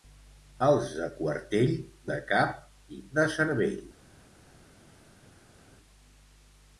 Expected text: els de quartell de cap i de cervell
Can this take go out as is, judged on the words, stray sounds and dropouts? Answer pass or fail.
pass